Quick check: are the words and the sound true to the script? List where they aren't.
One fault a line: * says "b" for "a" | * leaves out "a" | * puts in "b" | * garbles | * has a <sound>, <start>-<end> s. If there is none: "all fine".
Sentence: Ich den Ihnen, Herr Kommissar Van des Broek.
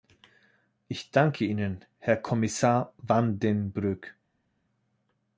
* says "danke" for "den"
* says "den" for "des"